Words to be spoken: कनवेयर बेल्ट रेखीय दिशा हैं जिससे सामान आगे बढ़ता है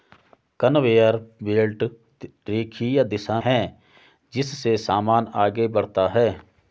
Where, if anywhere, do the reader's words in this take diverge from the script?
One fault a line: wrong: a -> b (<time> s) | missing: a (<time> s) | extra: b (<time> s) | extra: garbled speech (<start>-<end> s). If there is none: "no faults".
no faults